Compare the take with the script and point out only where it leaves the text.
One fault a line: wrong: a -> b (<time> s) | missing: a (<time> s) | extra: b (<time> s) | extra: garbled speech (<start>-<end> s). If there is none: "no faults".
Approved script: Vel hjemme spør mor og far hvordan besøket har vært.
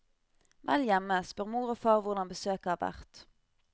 no faults